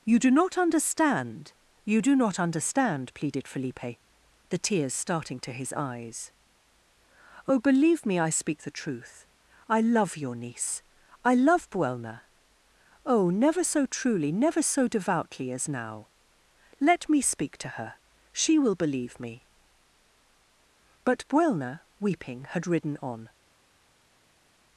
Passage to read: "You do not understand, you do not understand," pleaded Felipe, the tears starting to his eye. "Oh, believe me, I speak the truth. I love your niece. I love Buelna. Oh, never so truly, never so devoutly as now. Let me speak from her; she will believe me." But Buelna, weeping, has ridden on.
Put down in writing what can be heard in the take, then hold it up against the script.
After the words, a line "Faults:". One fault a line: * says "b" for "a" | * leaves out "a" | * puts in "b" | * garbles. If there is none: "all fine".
"You do not understand, you do not understand," pleaded Felipe, the tears starting to his eyes. "Oh, believe me, I speak the truth. I love your niece. I love Buelna. Oh, never so truly, never so devoutly as now. Let me speak to her; she will believe me." But Buelna, weeping, had ridden on.
Faults:
* says "eyes" for "eye"
* says "to" for "from"
* says "had" for "has"